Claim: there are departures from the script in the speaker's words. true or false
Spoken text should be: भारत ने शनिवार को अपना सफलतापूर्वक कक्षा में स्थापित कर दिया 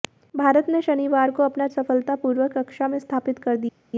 false